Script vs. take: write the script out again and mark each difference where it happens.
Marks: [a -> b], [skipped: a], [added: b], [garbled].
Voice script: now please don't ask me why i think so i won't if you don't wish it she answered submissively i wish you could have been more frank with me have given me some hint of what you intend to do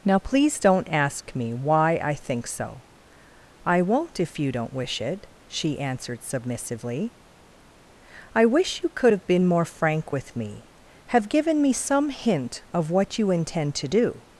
now please don't ask me why i think so i won't if you don't wish it she answered submissively i wish you could have been more frank with me have given me some hint of what you intend to do